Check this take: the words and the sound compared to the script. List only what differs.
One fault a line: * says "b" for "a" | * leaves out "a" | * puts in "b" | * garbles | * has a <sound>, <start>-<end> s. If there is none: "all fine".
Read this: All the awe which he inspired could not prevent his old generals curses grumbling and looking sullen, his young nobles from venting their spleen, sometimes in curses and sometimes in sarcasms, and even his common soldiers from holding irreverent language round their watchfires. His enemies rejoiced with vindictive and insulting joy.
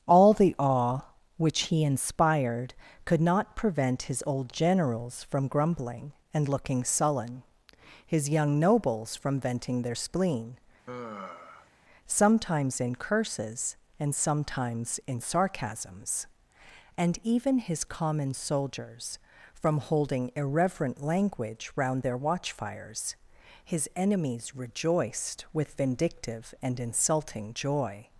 * says "from" for "curses"
* has a sigh, 10.9-11.7 s